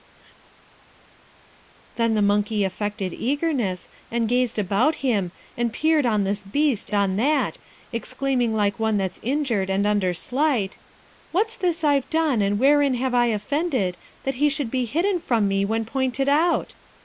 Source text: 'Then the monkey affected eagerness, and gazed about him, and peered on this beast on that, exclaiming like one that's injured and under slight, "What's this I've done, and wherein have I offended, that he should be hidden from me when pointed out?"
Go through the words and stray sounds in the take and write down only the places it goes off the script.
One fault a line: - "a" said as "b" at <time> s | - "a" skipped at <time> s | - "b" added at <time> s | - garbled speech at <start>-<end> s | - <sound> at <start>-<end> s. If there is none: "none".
none